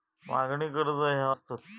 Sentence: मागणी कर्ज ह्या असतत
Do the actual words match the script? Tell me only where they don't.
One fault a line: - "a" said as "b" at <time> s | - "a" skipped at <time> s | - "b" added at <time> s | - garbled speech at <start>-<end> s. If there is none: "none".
none